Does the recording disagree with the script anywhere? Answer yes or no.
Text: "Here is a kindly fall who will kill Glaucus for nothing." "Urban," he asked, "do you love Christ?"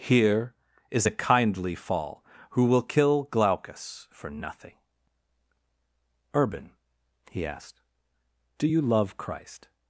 no